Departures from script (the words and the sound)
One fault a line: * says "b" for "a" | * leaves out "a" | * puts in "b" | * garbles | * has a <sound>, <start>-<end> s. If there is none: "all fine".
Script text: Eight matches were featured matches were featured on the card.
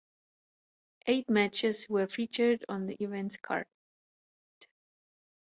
* leaves out "matches were featured"
* puts in "event's"